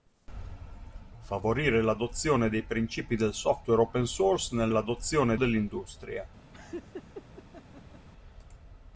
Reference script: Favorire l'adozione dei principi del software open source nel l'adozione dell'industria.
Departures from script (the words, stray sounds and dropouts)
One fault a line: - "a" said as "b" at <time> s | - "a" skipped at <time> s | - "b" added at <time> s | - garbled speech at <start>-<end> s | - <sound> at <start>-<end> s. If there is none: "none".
- laugh at 6.5-8.1 s